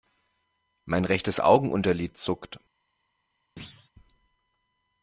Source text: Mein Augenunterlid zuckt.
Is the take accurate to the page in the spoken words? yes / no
no